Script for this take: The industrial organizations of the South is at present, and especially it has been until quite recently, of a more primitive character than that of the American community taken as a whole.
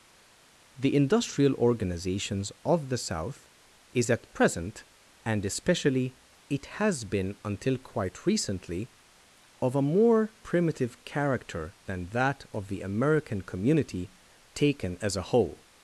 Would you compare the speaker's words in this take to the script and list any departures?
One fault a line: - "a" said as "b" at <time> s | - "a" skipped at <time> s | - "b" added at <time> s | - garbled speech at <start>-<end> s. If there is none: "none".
none